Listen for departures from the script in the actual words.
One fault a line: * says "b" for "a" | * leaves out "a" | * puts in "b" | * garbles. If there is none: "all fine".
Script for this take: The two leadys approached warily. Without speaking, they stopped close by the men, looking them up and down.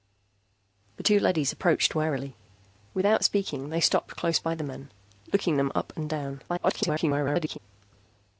* garbles